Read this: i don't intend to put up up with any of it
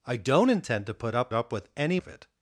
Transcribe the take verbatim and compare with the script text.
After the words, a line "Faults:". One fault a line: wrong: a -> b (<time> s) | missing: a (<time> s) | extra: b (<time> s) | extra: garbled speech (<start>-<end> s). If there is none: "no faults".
i don't intend to put up up with any of it
Faults:
no faults